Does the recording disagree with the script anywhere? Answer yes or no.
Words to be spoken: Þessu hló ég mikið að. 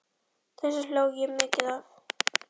no